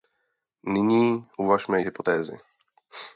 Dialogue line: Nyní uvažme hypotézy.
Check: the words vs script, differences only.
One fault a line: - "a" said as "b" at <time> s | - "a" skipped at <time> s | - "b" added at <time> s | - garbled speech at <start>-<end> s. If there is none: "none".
none